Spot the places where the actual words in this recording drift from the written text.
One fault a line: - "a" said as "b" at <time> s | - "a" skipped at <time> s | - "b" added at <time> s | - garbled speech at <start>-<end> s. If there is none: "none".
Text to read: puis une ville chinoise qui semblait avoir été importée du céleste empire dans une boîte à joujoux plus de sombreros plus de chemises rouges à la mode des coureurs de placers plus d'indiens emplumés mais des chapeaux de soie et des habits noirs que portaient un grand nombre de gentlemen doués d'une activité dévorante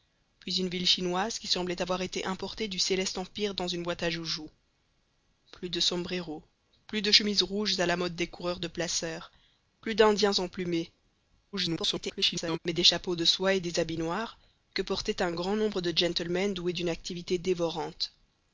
- garbled speech at 11.5-12.6 s